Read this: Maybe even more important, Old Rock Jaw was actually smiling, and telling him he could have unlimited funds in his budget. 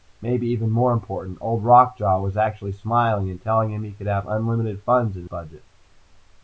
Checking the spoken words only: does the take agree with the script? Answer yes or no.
no